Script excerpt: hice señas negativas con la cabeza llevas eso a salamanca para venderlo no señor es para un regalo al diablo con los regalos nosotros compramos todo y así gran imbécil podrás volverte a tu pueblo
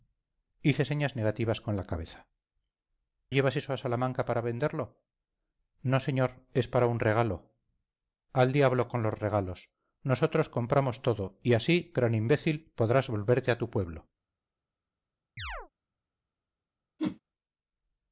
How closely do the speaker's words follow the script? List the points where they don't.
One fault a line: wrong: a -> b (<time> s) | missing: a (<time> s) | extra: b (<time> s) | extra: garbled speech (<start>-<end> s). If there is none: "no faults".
no faults